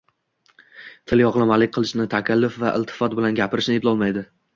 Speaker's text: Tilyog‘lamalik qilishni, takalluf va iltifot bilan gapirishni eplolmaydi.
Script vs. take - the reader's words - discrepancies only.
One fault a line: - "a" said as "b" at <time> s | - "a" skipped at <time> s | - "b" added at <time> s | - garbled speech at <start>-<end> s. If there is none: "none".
none